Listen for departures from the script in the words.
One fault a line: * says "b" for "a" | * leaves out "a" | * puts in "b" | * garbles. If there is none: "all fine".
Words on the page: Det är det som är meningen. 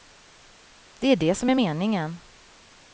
all fine